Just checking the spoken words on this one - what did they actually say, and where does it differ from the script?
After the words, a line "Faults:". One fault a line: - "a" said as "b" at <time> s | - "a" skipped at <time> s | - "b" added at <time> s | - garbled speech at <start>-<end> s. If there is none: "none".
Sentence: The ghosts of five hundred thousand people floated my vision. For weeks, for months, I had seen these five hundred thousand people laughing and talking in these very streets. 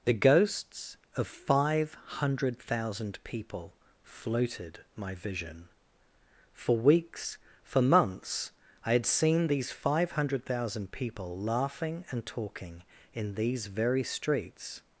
The ghosts of five hundred thousand people floated my vision. For weeks, for months, I had seen these five hundred thousand people laughing and talking in these very streets.
Faults:
none